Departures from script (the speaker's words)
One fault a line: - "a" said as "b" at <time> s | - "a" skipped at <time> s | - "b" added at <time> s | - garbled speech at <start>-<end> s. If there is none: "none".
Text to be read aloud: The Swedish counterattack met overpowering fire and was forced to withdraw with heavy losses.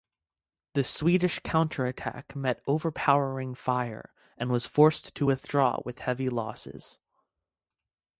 none